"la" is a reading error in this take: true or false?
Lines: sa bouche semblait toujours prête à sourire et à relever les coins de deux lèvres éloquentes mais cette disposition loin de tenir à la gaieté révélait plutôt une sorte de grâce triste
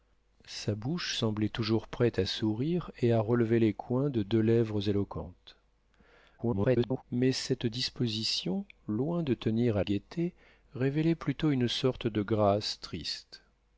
true